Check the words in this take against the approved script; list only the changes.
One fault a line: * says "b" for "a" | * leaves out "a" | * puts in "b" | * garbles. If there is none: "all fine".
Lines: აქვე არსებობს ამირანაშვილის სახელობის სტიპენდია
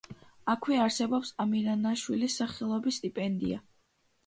all fine